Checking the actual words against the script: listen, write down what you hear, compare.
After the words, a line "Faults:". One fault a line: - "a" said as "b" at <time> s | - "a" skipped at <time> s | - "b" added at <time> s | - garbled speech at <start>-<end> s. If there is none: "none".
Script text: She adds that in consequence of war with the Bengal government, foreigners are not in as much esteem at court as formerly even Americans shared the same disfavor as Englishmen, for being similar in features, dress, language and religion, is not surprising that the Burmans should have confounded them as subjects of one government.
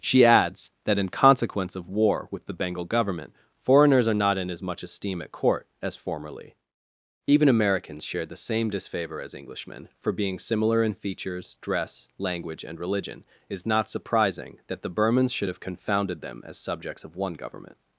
She adds that in consequence of war with the Bengal government, foreigners are not in as much esteem at court as formerly even Americans shared the same disfavor as Englishmen, for being similar in features, dress, language and religion, is not surprising that the Burmans should have confounded them as subjects of one government.
Faults:
none